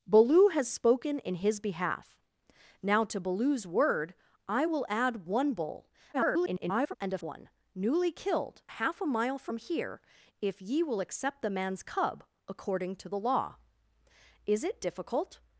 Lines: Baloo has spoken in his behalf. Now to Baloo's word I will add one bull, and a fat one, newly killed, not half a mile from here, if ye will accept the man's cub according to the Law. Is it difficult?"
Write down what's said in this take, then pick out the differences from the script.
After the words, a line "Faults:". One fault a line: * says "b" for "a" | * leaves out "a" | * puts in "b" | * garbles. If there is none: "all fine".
Baloo has spoken in his behalf. Now to Baloo's word I will add one bull, [garbled] and a one, newly killed, half a mile from here, if ye will accept the man's cub according to the Law. Is it difficult?"
Faults:
* garbles
* leaves out "fat"
* leaves out "not"